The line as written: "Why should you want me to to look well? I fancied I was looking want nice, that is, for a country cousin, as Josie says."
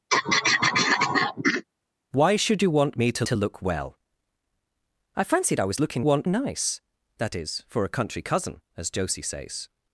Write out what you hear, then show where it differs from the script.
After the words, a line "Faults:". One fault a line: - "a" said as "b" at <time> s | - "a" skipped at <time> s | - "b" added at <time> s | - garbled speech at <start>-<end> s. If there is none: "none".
"Why should you want me to to look well? I fancied I was looking want nice, that is, for a country cousin, as Josie says."
Faults:
none